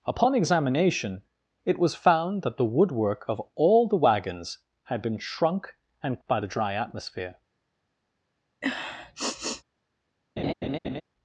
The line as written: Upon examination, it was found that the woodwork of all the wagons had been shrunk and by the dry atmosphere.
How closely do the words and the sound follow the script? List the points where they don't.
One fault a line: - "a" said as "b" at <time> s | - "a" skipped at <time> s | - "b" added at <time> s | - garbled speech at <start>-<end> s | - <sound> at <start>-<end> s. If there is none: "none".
- sniff at 8.6-9.6 s
- laugh at 10.4-11.0 s